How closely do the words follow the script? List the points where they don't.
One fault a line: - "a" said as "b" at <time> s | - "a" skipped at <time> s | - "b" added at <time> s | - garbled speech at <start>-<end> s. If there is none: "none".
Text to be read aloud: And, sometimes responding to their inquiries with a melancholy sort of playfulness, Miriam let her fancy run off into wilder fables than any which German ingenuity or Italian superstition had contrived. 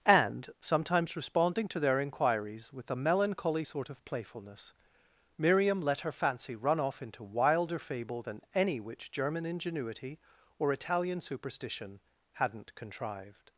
- "fables" said as "fable" at 7.8 s
- "had" said as "hadn't" at 12.3 s